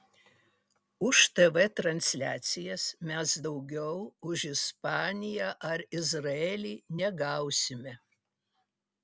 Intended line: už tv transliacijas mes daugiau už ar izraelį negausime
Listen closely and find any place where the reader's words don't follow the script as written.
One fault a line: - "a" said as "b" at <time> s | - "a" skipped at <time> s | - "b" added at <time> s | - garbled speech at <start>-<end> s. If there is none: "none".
- "ispaniją" added at 4.5 s